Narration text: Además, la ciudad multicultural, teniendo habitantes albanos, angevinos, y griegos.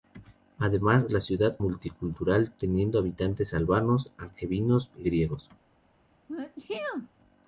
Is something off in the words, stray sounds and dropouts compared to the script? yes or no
yes